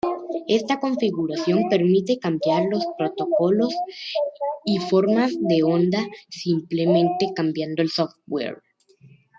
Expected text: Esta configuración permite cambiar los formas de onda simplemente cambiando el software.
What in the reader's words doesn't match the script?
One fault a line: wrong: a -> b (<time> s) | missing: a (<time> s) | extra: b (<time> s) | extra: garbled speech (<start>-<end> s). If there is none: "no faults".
extra: protocolos y (3.0 s)